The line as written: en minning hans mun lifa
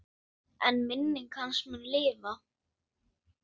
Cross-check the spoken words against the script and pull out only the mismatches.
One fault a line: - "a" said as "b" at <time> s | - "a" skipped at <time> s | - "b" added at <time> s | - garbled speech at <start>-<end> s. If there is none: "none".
none